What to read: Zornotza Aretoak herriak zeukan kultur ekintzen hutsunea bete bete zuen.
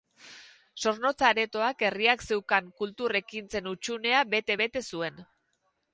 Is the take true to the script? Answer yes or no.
yes